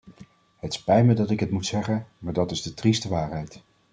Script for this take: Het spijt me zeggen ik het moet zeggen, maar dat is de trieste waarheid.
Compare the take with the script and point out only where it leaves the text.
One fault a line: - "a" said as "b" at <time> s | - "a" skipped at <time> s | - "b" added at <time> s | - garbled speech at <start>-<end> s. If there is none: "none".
- "zeggen" said as "dat" at 1.1 s